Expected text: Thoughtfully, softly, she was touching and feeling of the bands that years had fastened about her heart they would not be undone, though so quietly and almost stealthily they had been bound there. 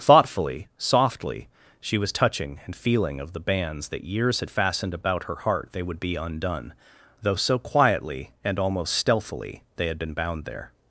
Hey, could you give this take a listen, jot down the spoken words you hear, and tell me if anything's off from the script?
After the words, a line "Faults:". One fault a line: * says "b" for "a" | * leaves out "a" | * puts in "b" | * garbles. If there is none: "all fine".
Thoughtfully, softly, she was touching and feeling of the bands that years had fastened about her heart they would be undone, though so quietly and almost stealthily they had been bound there.
Faults:
* leaves out "not"